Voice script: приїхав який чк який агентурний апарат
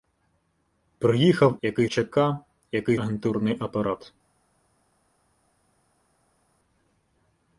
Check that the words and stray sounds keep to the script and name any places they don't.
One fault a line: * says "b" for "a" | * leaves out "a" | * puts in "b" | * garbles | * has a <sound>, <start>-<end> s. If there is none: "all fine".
all fine